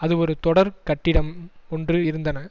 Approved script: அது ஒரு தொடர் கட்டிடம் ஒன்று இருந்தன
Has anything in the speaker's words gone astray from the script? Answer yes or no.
no